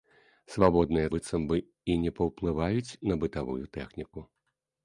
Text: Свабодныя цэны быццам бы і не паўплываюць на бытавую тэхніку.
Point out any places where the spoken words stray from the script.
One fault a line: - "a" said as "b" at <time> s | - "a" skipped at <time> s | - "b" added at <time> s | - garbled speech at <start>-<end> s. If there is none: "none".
- "цэны" skipped at 1.1 s